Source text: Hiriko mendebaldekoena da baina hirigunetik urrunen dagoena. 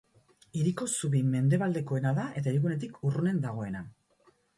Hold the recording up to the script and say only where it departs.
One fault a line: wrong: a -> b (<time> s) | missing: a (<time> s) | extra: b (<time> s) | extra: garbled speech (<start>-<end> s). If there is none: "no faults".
extra: zubi (0.9 s)
wrong: baina -> eta (2.4 s)